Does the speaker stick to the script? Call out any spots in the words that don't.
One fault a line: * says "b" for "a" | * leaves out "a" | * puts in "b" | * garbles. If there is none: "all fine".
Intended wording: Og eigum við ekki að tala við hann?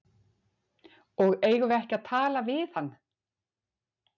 all fine